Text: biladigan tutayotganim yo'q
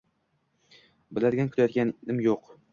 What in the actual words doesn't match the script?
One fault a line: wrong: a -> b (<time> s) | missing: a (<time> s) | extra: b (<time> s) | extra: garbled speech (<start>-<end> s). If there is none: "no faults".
no faults